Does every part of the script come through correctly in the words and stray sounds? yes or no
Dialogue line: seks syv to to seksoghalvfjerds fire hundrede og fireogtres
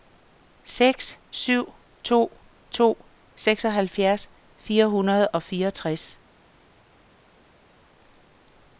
yes